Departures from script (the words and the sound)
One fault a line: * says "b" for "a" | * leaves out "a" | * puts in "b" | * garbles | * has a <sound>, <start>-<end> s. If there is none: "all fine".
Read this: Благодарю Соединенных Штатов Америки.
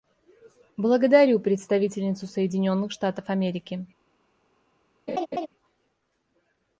* puts in "представительницу"
* has a laugh, 5.1-5.5 s